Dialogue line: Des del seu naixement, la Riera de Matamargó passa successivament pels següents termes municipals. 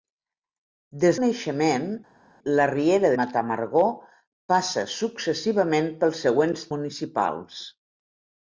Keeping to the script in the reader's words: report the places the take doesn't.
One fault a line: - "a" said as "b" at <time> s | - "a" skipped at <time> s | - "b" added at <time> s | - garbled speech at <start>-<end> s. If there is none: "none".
- "del seu" skipped at 1.2 s
- "de" skipped at 3.1 s
- "termes" skipped at 6.7 s